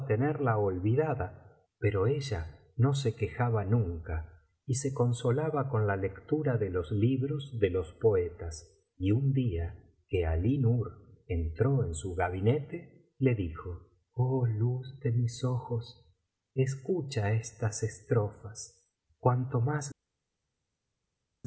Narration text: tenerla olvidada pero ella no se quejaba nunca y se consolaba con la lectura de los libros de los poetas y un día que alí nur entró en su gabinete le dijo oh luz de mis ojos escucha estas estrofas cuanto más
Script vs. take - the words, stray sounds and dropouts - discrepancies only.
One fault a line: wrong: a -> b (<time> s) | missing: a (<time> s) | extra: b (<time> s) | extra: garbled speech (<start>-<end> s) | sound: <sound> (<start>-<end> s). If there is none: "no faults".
no faults